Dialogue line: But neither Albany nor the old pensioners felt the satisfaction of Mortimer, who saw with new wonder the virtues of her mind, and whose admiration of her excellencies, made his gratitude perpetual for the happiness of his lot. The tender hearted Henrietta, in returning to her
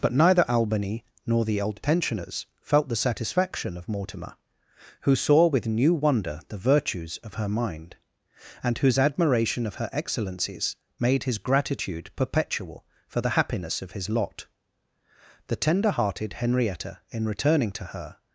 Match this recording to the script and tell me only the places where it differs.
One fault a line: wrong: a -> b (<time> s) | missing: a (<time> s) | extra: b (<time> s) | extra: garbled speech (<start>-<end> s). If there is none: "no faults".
no faults